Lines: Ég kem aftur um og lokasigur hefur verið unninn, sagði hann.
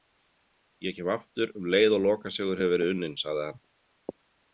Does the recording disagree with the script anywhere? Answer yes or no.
yes